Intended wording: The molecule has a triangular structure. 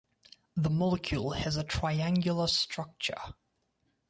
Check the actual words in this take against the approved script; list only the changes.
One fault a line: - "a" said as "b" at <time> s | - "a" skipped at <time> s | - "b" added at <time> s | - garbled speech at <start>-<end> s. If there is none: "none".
none